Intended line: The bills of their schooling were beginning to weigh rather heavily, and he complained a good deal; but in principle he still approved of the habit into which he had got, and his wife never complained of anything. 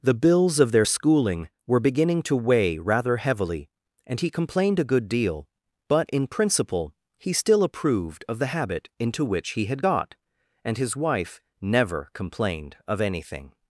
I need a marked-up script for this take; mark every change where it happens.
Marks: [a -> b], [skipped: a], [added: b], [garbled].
The bills of their schooling were beginning to weigh rather heavily, and he complained a good deal; but in principle he still approved of the habit into which he had got, and his wife never complained of anything.